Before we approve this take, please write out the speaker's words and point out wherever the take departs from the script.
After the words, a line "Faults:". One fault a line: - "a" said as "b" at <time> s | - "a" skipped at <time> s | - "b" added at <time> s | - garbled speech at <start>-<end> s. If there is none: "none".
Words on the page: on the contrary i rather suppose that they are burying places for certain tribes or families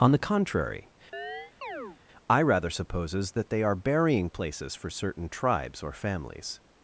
on the contrary i rather supposes that they are burying places for certain tribes or families
Faults:
- "suppose" said as "supposes" at 2.7 s